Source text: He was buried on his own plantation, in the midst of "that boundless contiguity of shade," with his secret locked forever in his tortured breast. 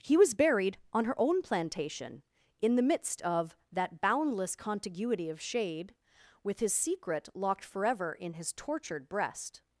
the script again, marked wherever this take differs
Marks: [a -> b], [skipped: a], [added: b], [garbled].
He was buried on [his -> her] own plantation, in the midst of "that boundless contiguity of shade," with his secret locked forever in his tortured breast.